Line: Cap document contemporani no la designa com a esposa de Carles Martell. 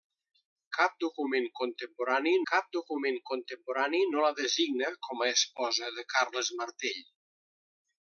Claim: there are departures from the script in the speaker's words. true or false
true